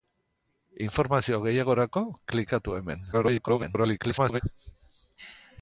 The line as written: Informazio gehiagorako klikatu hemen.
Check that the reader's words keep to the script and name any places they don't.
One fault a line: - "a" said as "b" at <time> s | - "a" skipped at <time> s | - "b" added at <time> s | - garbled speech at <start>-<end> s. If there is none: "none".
- garbled speech at 3.1-4.4 s